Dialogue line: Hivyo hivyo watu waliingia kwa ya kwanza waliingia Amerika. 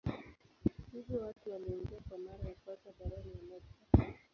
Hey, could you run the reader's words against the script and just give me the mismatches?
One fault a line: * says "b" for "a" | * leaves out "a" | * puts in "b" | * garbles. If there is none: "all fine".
* leaves out "hivyo"
* puts in "mara"
* says "barani" for "waliingia"